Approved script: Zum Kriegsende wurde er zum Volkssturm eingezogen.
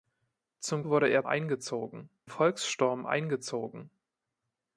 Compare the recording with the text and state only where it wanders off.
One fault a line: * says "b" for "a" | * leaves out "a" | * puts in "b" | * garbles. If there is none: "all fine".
* leaves out "Kriegsende"
* says "eingezogen" for "zum"